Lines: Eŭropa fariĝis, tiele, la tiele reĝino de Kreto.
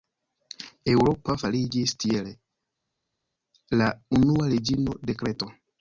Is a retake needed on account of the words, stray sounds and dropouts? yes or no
yes